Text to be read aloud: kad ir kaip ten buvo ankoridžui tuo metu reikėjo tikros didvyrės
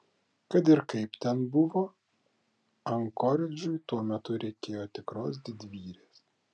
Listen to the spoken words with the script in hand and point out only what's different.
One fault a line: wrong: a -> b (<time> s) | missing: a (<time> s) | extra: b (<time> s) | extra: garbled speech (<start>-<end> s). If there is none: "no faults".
no faults